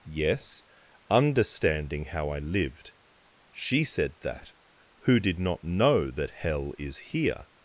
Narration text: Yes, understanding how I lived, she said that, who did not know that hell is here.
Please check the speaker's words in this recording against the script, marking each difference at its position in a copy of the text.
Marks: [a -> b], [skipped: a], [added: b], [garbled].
Yes, understanding how I lived, she said that, who did not know that hell is here.